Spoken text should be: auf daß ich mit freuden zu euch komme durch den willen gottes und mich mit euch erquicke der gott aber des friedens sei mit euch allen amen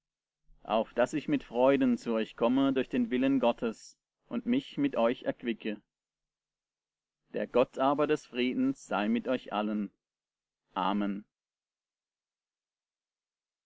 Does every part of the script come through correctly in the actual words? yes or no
yes